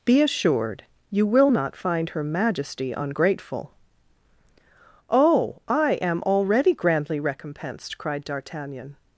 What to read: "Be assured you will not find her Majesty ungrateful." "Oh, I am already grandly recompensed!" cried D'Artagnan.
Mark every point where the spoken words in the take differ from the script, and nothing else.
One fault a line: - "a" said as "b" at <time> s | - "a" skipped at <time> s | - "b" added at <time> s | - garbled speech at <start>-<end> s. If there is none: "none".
none